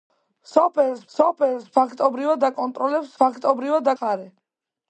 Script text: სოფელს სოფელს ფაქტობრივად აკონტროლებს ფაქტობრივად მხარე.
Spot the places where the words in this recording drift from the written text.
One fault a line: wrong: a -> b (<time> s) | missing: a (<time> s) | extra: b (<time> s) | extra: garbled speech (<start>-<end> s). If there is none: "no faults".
no faults